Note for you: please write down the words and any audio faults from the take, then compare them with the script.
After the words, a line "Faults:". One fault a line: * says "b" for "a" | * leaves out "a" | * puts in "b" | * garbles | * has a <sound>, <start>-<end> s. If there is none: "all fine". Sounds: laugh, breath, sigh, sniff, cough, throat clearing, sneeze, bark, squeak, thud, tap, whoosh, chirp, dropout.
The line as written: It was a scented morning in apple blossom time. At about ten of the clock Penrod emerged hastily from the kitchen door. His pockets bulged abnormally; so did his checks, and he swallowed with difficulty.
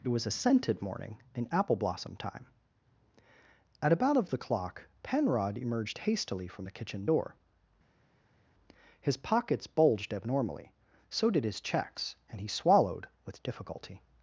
It was a scented morning in apple blossom time. At about of the clock Penrod emerged hastily from the kitchen door. His pockets bulged abnormally; so did his checks, and he swallowed with difficulty.
Faults:
* leaves out "ten"